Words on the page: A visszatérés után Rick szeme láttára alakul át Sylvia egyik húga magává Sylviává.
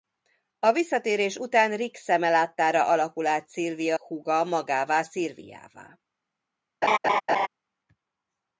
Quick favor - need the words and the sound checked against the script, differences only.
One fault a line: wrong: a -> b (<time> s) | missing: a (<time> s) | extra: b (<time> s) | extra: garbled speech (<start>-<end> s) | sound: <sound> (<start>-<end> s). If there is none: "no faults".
missing: egyik (4.0 s)
sound: laugh (6.8-7.5 s)